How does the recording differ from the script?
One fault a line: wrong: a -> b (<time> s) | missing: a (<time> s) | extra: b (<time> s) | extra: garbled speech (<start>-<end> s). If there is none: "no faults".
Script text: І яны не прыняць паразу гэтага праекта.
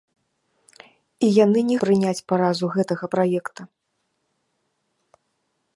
no faults